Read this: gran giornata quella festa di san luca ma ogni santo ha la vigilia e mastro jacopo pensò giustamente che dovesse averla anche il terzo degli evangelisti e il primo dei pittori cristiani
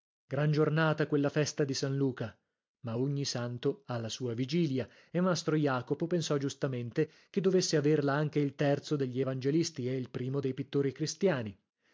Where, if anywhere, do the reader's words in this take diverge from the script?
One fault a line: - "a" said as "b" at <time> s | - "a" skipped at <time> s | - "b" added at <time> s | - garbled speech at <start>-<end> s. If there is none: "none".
- "sua" added at 4.1 s